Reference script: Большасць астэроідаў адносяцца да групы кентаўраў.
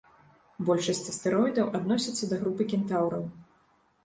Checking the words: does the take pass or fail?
pass